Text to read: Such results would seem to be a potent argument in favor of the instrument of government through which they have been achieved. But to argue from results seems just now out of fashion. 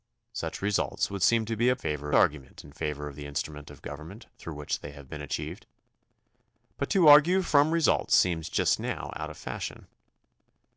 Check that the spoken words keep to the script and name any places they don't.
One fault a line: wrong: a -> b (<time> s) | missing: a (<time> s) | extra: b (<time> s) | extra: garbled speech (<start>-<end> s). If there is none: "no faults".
wrong: potent -> favor (1.8 s)